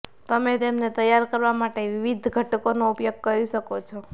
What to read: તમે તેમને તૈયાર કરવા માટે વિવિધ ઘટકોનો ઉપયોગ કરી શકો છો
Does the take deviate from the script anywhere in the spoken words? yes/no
no